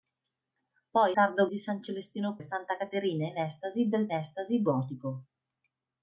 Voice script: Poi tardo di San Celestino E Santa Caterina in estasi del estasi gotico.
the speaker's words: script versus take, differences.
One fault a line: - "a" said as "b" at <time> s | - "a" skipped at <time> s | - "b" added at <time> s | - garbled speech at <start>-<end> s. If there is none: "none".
none